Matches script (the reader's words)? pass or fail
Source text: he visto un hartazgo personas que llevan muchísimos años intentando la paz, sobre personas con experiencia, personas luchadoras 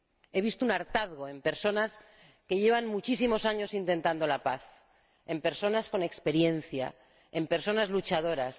fail